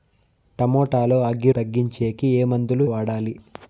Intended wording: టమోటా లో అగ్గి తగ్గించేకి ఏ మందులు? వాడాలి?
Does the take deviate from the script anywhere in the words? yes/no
no